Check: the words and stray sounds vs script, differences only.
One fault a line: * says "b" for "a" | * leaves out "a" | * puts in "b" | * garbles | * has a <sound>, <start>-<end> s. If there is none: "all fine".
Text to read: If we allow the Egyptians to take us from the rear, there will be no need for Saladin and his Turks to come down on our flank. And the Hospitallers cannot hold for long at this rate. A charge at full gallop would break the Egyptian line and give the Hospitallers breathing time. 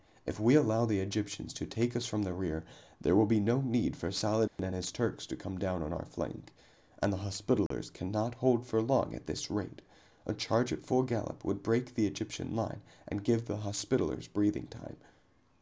* has a dropout, 4.5-4.6 s
* has a dropout, 7.7-7.7 s